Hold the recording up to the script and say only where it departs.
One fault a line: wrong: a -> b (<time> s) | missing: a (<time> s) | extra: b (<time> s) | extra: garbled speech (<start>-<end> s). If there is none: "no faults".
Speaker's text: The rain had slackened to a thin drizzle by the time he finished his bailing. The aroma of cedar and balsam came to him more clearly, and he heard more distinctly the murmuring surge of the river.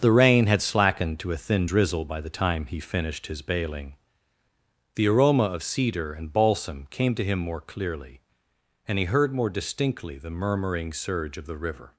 no faults